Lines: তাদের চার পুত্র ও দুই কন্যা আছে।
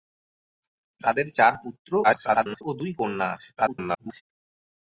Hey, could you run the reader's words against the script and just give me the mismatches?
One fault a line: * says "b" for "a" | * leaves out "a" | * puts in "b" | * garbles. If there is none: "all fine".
* garbles
* garbles